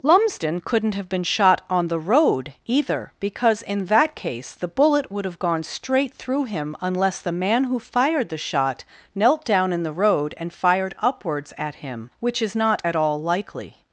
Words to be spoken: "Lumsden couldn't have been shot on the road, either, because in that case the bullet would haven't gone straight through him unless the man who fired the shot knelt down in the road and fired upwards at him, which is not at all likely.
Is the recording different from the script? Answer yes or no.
yes